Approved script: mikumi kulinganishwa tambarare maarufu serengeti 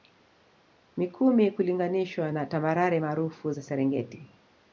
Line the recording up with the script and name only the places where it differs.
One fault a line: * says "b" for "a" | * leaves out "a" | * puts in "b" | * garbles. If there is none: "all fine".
* puts in "na"
* puts in "za"